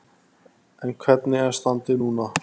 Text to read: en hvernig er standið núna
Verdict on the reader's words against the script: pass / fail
pass